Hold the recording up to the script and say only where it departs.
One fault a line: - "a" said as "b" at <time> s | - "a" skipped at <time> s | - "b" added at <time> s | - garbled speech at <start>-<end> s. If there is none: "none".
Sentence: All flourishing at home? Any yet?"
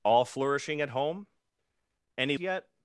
none